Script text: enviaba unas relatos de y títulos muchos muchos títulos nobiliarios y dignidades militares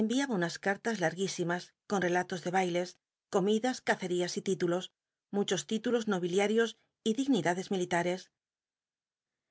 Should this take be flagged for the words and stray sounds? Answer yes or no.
yes